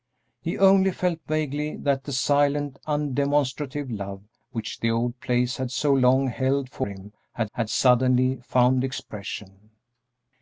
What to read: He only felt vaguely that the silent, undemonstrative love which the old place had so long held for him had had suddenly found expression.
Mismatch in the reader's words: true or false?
false